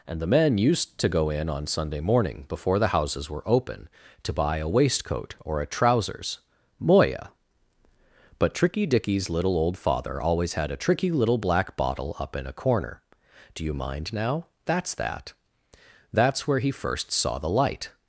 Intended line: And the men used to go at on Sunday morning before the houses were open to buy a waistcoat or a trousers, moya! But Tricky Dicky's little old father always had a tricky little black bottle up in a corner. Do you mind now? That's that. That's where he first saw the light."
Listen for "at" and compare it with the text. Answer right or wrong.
wrong